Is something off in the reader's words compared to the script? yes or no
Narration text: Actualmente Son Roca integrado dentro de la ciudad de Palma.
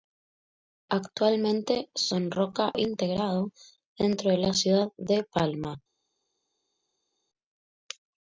no